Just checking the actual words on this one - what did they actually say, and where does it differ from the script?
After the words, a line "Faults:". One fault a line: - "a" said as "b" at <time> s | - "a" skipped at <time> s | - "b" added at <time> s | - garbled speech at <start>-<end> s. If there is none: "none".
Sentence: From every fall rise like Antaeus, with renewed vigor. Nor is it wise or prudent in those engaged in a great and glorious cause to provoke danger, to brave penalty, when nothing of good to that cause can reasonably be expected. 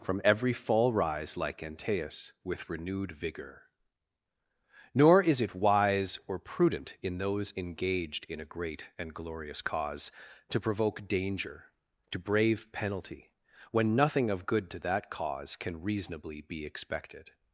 From every fall rise like Antaeus, with renewed vigor. Nor is it wise or prudent in those engaged in a great and glorious cause to provoke danger, to brave penalty, when nothing of good to that cause can reasonably be expected.
Faults:
none